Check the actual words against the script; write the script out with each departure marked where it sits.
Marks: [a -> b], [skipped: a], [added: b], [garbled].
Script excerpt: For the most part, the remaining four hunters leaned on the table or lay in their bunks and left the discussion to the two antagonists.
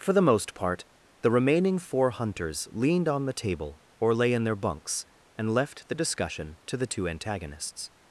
For the most part, the remaining four hunters leaned on the table or lay in their bunks and left the discussion to the two antagonists.